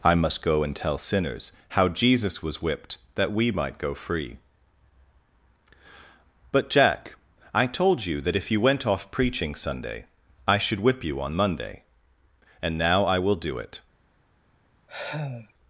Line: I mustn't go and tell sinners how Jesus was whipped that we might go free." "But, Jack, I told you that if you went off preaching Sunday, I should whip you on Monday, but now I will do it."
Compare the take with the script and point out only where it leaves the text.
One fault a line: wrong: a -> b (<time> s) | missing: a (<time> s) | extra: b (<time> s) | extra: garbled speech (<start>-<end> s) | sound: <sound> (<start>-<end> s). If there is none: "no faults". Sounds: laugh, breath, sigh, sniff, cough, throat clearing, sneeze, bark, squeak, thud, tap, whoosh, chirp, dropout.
wrong: mustn't -> must (0.1 s)
wrong: but -> and (12.6 s)
sound: sigh (14.9-15.5 s)